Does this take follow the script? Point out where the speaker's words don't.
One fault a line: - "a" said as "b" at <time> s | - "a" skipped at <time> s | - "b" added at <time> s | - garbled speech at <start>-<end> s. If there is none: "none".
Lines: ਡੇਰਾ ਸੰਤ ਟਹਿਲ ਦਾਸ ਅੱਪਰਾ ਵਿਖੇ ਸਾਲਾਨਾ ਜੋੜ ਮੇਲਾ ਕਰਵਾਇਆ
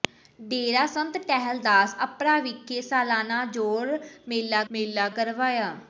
- "ਮੇਲਾ" added at 4.7 s